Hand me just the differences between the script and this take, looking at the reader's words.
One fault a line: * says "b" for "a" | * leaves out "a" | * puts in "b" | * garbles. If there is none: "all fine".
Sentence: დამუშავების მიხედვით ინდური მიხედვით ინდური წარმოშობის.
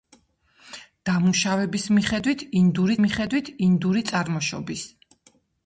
all fine